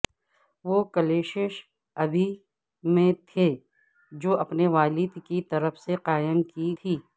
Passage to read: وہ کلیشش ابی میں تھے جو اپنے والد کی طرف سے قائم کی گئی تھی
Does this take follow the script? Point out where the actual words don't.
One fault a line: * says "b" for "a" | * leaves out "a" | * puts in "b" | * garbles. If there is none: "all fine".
* leaves out "گئی"